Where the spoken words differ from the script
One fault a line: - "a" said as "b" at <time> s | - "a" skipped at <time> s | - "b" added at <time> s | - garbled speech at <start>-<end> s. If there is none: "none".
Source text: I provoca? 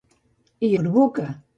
none